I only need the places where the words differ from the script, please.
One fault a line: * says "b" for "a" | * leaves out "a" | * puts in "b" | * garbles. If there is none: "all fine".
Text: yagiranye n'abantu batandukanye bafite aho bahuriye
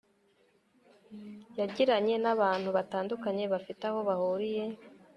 all fine